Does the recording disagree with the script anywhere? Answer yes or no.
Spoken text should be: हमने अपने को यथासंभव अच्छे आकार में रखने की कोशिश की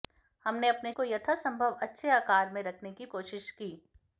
no